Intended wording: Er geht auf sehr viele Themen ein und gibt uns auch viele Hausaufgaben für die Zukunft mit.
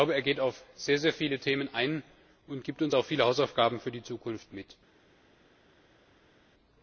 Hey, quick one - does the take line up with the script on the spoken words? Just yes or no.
yes